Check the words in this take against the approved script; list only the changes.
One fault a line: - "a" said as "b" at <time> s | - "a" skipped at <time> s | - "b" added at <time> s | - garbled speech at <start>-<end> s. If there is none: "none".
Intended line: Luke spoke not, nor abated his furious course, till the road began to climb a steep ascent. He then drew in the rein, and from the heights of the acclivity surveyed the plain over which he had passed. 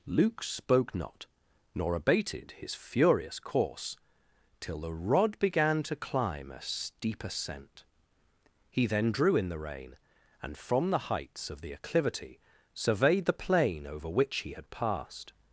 - "road" said as "rod" at 4.9 s